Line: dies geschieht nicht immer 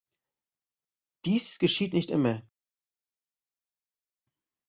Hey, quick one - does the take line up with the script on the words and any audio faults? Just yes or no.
yes